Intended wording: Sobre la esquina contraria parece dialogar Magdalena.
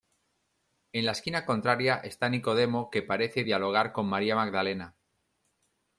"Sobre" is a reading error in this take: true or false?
true